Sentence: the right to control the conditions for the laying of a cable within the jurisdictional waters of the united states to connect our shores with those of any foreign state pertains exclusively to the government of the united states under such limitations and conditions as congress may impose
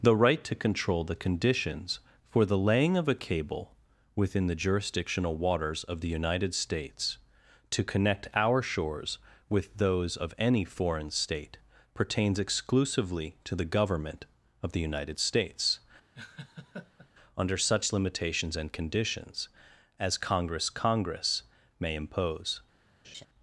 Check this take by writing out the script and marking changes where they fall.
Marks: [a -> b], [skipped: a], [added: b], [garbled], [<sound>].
the right to control the conditions for the laying of a cable within the jurisdictional waters of the united states to connect our shores with those of any foreign state pertains exclusively to the government of the united states [laugh] under such limitations and conditions as congress [added: congress] may impose [laugh]